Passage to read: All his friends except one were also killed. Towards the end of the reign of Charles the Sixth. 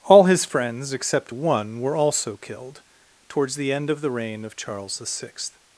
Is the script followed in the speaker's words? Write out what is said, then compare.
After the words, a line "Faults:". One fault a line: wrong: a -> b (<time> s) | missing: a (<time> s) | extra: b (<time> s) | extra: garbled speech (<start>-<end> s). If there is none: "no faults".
All his friends except one were also killed. Towards the end of the reign of Charles the Sixth.
Faults:
no faults